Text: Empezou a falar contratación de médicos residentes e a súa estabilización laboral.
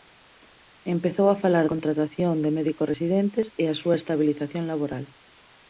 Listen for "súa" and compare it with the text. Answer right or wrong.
right